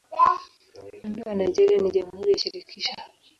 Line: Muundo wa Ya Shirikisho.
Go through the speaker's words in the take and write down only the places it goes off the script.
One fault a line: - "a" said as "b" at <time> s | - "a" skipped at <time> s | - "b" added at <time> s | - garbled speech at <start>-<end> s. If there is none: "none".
- "Nigeria ni Jamhuri" added at 1.4 s